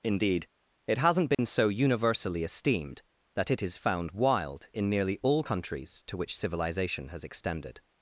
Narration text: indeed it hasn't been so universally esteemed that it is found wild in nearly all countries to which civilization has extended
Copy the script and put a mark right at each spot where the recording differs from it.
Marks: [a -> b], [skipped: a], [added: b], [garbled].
indeed it hasn't been so universally esteemed that it is found wild in nearly all countries to which civilization has extended